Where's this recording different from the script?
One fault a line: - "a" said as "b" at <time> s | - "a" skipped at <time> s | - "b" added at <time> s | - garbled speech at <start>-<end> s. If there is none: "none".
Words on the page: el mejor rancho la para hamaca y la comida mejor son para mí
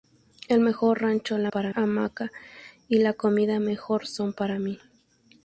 none